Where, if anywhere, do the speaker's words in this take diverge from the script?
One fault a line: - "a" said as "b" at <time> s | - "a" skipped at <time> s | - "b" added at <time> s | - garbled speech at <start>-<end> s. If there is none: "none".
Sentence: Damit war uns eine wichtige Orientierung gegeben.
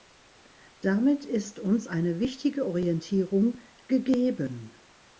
- "war" said as "ist" at 1.2 s